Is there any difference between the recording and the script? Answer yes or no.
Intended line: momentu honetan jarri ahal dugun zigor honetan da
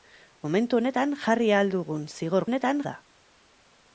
no